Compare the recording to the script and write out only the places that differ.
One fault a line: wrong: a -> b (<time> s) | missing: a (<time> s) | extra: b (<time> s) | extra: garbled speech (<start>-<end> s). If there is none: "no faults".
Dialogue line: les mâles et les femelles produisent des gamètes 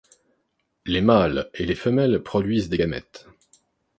no faults